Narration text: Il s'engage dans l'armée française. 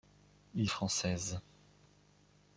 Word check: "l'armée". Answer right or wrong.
wrong